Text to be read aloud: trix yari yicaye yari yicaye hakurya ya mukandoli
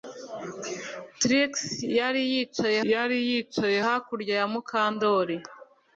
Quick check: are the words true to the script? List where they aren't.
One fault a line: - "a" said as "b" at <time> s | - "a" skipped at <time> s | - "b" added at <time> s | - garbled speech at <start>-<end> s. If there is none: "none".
none